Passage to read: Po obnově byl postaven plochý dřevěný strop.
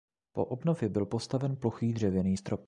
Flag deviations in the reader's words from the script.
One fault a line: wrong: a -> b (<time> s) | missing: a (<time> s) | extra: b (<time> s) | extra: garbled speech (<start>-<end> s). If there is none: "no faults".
no faults